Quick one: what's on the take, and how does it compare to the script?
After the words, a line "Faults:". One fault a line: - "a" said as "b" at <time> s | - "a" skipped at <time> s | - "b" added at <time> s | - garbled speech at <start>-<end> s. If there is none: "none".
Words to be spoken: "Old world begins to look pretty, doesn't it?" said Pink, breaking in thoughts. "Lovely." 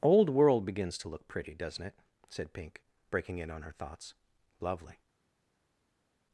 "Old world begins to look pretty, doesn't it?" said Pink, breaking in on her thoughts. "Lovely."
Faults:
- "on her" added at 3.5 s